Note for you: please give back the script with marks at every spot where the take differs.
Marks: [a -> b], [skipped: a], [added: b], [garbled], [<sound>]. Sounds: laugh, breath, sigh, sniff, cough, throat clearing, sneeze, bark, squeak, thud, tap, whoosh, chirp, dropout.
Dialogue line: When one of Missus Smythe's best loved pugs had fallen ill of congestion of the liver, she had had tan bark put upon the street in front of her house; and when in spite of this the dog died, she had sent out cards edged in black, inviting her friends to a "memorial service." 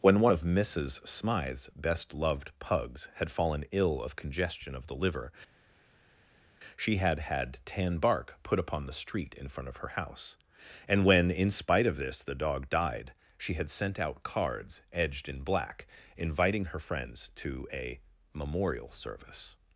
When one of Missus Smythe's best loved pugs had fallen ill of congestion of the liver, she had had tan bark put upon the street in front of her house; and when in spite of this the dog died, she had sent out cards edged in black, inviting her friends to a "memorial service."